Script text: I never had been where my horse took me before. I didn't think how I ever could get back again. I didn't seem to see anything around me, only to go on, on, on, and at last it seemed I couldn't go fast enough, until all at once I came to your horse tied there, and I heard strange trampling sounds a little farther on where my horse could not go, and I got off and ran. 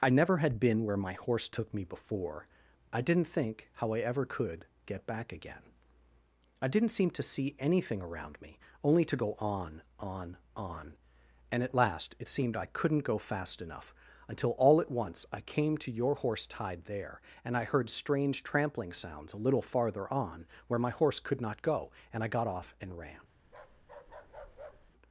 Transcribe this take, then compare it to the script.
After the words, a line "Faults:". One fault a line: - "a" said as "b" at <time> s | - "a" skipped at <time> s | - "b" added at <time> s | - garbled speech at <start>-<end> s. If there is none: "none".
I never had been where my horse took me before. I didn't think how I ever could get back again. I didn't seem to see anything around me, only to go on, on, on, and at last it seemed I couldn't go fast enough, until all at once I came to your horse tied there, and I heard strange trampling sounds a little farther on where my horse could not go, and I got off and ran.
Faults:
none